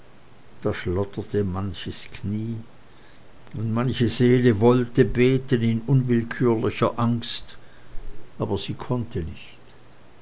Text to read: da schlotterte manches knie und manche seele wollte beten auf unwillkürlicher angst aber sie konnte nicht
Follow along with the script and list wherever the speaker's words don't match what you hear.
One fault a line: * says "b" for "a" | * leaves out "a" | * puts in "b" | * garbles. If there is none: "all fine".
* says "in" for "auf"